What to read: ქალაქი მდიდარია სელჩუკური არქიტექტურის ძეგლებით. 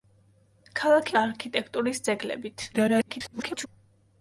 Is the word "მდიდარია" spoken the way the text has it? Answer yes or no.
no